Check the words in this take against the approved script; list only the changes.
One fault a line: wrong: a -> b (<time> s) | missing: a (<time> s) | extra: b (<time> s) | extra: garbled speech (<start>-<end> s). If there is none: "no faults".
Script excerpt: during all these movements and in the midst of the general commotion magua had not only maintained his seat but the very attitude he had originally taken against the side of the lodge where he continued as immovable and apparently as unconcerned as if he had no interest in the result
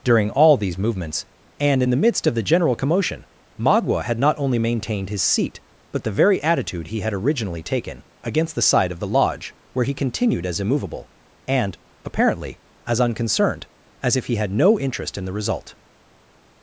no faults